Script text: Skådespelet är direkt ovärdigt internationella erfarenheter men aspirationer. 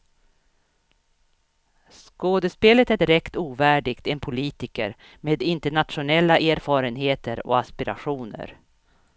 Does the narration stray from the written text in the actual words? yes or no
yes